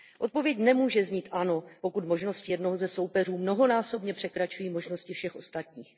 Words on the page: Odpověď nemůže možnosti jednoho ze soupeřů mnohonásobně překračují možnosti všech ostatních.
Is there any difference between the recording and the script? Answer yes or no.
yes